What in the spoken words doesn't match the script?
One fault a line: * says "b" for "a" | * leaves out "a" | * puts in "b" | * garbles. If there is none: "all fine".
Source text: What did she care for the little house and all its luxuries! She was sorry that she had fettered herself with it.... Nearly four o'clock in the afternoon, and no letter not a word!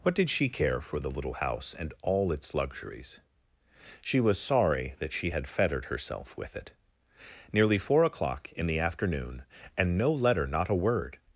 all fine